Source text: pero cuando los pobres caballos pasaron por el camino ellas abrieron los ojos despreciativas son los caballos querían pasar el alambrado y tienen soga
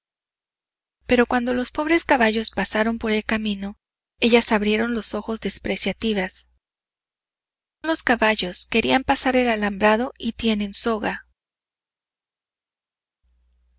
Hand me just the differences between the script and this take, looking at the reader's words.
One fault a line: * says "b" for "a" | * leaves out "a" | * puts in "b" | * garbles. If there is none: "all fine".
* leaves out "son"